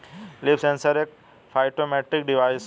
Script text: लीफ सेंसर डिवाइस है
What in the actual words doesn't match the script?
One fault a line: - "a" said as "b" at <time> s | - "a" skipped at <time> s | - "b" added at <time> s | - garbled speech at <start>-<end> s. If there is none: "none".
- "एक फाइटोमेट्रिक" added at 1.0 s